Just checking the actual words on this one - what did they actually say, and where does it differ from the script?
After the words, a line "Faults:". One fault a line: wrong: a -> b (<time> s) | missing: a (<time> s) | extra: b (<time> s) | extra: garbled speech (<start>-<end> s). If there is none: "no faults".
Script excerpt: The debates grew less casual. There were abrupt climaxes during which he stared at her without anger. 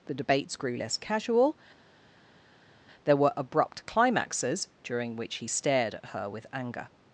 The debates grew less casual. There were abrupt climaxes during which he stared at her with anger.
Faults:
wrong: without -> with (6.3 s)